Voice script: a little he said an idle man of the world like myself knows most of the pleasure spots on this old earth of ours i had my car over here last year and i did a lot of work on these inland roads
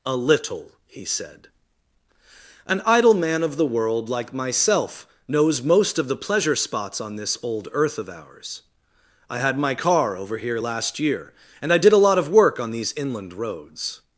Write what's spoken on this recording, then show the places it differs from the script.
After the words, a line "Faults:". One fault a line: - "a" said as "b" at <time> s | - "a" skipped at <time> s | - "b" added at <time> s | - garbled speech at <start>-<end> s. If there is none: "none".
a little he said an idle man of the world like myself knows most of the pleasure spots on this old earth of ours i had my car over here last year and i did a lot of work on these inland roads
Faults:
none